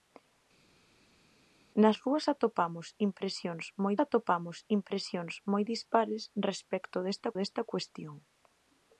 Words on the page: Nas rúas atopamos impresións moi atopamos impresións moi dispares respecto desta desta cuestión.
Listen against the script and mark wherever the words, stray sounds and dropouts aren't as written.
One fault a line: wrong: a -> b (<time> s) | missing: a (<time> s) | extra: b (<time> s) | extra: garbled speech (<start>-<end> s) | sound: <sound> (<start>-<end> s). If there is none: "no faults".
no faults